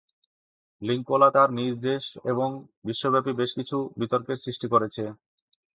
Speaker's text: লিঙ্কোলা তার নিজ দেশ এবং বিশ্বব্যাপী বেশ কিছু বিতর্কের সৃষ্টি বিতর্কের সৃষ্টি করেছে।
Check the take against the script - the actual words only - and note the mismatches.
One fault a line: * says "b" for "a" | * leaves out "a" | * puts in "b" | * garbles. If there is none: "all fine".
* leaves out "বিতর্কের সৃষ্টি"